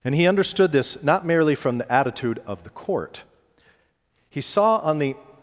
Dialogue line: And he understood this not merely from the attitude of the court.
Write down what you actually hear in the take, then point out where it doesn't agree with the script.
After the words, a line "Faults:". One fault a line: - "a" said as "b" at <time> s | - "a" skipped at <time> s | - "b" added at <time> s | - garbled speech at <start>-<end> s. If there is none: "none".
And he understood this not merely from the attitude of the court. He saw on the
Faults:
- "He saw on the" added at 4.3 s